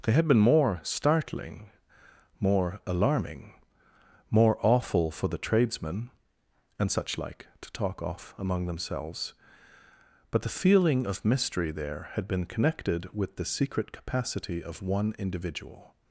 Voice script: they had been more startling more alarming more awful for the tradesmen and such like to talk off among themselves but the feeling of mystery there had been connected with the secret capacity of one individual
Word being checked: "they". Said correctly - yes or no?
yes